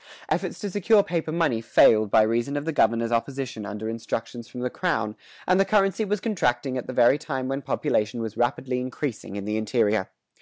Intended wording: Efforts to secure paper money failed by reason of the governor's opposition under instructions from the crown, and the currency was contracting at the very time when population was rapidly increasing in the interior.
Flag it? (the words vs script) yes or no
no